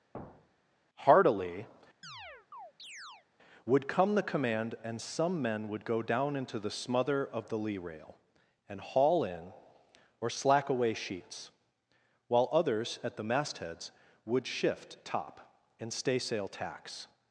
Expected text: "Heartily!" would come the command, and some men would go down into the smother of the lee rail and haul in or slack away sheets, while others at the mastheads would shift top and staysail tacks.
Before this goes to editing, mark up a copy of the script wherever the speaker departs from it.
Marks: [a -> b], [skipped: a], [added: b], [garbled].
"Heartily!" would come the command, and some men would go down into the smother of the lee rail and haul in or slack away sheets, while others at the mastheads would shift top and staysail tacks.